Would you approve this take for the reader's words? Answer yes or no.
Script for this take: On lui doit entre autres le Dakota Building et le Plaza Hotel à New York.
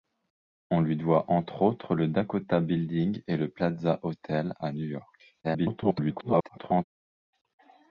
no